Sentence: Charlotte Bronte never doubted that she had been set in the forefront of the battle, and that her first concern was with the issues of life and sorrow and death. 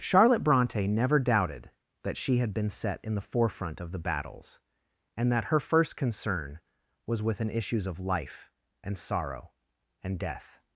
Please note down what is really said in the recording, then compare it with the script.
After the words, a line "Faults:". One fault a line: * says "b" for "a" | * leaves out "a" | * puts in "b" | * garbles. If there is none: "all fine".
Charlotte Bronte never doubted that she had been set in the forefront of the battles, and that her first concern was with an issues of life and sorrow and death.
Faults:
* says "battles" for "battle"
* says "an" for "the"